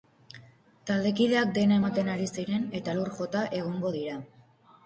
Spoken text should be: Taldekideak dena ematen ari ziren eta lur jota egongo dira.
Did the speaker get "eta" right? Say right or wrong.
right